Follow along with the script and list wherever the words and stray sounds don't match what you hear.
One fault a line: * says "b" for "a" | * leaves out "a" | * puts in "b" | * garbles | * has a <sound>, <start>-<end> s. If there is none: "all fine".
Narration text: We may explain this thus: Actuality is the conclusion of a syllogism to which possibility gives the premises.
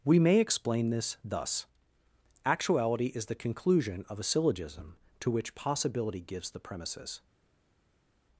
all fine